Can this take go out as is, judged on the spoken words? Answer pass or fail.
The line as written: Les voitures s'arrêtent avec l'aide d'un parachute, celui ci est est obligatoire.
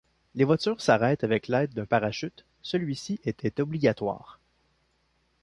pass